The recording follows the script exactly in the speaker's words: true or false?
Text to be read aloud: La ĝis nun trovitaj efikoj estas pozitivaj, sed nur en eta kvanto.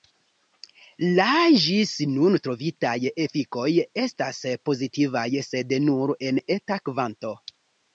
true